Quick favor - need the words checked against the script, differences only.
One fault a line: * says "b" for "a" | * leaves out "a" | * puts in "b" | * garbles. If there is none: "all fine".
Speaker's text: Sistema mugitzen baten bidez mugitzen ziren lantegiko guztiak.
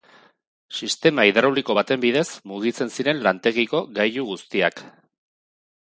* says "hidrauliko" for "mugitzen"
* puts in "gailu"